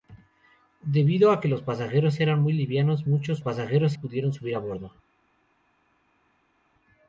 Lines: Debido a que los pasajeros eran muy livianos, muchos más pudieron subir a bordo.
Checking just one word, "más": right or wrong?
wrong